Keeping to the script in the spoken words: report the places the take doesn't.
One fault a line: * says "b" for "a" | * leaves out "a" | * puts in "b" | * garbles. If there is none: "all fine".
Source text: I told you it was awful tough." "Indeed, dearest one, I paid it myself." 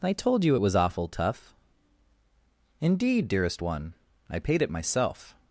all fine